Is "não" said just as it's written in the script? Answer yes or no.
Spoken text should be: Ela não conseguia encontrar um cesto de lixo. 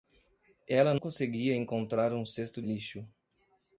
no